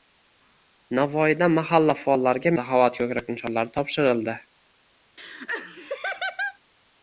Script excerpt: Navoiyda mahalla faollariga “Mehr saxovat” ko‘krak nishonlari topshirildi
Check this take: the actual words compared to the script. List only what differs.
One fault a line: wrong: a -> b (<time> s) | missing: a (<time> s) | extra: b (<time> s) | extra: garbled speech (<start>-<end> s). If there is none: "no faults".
missing: Mehr (2.5 s)